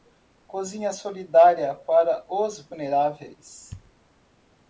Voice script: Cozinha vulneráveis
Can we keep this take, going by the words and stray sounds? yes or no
no